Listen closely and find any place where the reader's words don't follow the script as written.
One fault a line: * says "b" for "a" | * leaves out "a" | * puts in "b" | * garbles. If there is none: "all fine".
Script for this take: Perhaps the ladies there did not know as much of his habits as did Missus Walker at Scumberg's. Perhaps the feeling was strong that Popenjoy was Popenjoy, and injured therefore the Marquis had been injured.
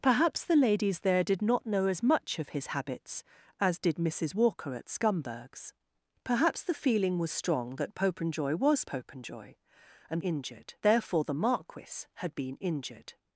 all fine